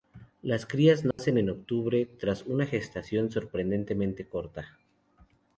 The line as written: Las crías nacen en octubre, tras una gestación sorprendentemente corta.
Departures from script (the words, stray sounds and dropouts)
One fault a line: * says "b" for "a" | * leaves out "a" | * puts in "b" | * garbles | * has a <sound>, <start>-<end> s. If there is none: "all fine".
* has a dropout, 1.1-1.2 s